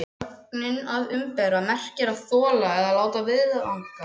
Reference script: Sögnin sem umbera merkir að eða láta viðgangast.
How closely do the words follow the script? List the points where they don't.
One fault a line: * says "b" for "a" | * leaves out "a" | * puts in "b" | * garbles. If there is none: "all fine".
* says "að" for "sem"
* puts in "þola"